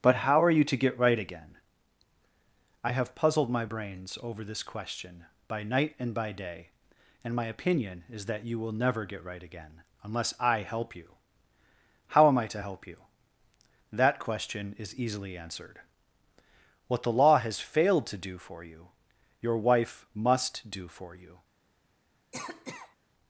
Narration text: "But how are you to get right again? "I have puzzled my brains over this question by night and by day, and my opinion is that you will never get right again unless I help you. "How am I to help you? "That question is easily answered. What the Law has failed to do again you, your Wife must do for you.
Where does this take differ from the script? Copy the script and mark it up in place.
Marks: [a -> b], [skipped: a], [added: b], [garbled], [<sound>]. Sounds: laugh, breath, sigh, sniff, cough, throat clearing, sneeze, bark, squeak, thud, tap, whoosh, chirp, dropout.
"But how are you to get right again? "I have puzzled my brains over this question by night and by day, and my opinion is that you will never get right again unless I help you. "How am I to help you? "That question is easily answered. What the Law has failed to do [again -> for] you, your Wife must do for you. [cough]